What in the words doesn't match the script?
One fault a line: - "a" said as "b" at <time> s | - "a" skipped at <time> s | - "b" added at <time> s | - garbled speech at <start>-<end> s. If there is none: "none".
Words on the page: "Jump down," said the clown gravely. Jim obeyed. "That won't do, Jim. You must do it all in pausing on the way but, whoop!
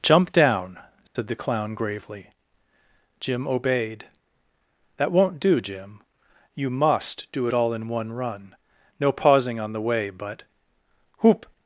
- "one run no" added at 7.9 s